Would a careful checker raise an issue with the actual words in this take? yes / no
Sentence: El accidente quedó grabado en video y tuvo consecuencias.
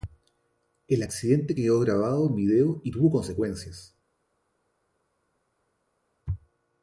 no